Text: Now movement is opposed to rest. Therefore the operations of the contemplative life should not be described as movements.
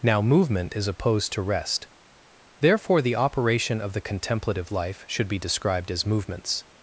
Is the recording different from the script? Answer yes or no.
yes